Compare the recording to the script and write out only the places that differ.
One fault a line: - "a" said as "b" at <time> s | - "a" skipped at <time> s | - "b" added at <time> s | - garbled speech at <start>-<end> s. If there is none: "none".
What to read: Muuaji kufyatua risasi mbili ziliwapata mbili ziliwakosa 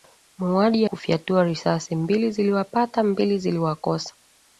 none